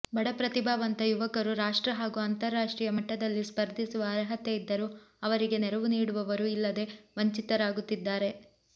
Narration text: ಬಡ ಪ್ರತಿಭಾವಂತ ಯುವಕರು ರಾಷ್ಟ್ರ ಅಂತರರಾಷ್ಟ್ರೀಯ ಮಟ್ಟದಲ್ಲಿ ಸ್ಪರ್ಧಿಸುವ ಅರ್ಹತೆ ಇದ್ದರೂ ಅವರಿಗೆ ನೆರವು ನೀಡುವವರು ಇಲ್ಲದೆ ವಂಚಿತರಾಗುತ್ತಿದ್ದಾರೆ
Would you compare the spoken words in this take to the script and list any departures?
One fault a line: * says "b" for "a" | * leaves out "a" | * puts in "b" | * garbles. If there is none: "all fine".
* puts in "ಹಾಗೂ"